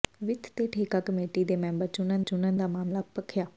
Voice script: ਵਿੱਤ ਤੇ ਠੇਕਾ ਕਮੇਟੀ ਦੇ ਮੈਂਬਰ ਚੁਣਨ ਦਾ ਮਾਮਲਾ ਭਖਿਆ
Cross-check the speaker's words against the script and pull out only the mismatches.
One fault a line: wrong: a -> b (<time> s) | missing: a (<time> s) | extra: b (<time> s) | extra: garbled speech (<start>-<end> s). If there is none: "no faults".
extra: ਚੁਣਨ (2.2 s)